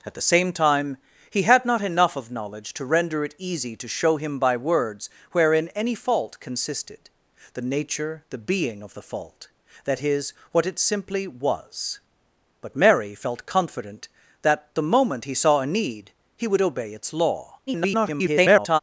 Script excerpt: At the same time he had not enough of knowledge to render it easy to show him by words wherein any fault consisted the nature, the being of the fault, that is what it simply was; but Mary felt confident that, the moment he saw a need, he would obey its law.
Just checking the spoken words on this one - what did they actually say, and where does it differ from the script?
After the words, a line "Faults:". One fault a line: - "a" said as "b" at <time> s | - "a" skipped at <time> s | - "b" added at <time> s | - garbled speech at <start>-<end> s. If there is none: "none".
At the same time he had not enough of knowledge to render it easy to show him by words wherein any fault consisted the nature, the being of the fault, that is what it simply was; but Mary felt confident that, the moment he saw a need, he would obey its law. [garbled]
Faults:
- garbled speech at 17.7-18.8 s